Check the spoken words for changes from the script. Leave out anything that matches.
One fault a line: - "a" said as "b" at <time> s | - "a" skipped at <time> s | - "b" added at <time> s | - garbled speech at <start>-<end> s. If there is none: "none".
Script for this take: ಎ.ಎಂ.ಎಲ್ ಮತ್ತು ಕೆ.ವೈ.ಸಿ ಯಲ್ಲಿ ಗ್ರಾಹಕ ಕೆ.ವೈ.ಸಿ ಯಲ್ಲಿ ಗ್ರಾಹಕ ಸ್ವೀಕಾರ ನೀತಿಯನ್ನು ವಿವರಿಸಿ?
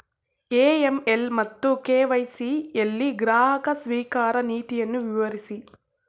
- "ಕೆ.ವೈ.ಸಿ ಯಲ್ಲಿ ಗ್ರಾಹಕ" skipped at 3.7 s